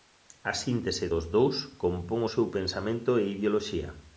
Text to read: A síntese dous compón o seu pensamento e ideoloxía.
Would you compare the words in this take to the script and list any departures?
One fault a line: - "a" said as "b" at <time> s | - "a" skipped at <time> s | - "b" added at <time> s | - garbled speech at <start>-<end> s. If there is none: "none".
- "dos" added at 1.1 s